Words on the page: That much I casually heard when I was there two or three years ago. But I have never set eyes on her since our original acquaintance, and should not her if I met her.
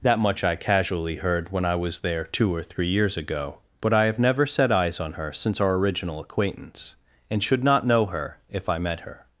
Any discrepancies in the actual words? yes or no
yes